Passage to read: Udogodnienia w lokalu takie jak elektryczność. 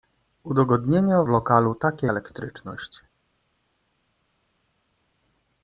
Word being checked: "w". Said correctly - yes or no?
no